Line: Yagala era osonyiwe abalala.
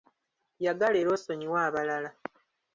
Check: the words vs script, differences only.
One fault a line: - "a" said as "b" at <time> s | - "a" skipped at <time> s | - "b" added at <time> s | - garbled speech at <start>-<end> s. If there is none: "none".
none